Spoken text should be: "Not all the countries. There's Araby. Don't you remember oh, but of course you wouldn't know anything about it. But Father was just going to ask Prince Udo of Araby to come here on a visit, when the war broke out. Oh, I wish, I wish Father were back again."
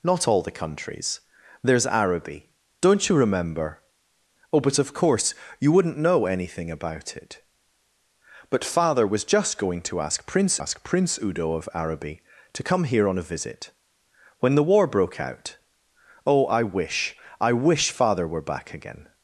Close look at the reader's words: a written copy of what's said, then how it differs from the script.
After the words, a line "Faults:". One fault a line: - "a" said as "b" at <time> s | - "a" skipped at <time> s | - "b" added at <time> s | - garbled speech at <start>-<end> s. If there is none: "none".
"Not all the countries. There's Araby. Don't you remember oh, but of course you wouldn't know anything about it. But Father was just going to ask Prince ask Prince Udo of Araby to come here on a visit, when the war broke out. Oh, I wish, I wish Father were back again."
Faults:
- "ask Prince" added at 10.6 s